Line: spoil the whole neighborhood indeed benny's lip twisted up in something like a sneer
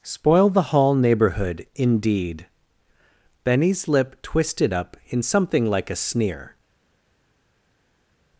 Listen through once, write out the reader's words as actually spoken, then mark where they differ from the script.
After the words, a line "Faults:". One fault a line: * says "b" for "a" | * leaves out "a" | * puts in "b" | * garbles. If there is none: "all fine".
spoil the hall neighborhood indeed benny's lip twisted up in something like a sneer
Faults:
* says "hall" for "whole"